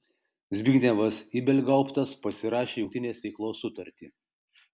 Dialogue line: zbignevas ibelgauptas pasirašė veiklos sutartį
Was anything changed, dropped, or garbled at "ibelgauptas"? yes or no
no